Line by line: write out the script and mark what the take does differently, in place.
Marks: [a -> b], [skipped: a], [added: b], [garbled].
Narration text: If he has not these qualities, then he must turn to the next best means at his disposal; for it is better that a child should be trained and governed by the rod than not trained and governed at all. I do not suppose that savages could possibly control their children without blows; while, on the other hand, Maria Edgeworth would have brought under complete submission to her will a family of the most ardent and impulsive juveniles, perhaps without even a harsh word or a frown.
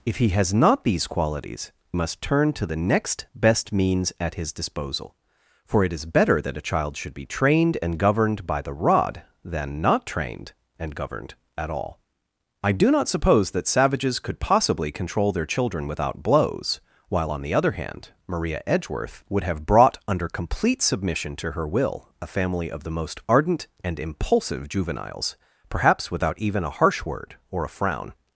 If he has not these qualities, [skipped: then he] must turn to the next best means at his disposal; for it is better that a child should be trained and governed by the rod than not trained and governed at all. I do not suppose that savages could possibly control their children without blows; while, on the other hand, Maria Edgeworth would have brought under complete submission to her will a family of the most ardent and impulsive juveniles, perhaps without even a harsh word or a frown.